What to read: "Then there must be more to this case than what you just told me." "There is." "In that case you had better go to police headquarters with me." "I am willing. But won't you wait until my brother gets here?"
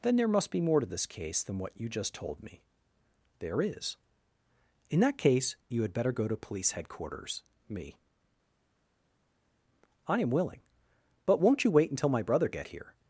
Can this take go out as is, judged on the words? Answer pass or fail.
fail